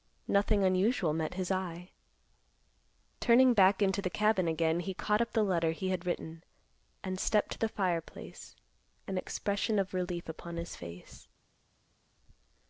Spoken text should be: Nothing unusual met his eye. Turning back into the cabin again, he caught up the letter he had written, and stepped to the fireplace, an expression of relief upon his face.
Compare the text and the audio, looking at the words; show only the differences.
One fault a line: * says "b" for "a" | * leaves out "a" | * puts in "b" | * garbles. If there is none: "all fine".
all fine